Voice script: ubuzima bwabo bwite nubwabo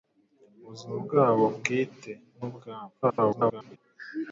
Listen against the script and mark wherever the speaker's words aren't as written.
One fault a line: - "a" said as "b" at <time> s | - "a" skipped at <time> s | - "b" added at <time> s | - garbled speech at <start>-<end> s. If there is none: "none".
- garbled speech at 3.0-3.8 s